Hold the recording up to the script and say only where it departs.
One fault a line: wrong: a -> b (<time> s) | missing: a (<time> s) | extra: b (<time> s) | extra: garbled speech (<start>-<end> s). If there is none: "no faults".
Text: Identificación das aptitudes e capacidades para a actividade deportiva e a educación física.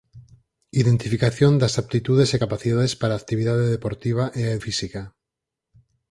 missing: educación (4.6 s)